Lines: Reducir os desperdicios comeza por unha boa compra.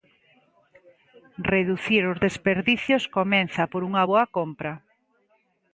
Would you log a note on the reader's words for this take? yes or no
no